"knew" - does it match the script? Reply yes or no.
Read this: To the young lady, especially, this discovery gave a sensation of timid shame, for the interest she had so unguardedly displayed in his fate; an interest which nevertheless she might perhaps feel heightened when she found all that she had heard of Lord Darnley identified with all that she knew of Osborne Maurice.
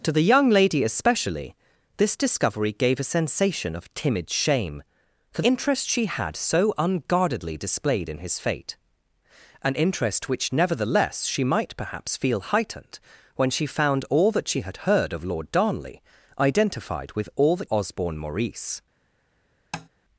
no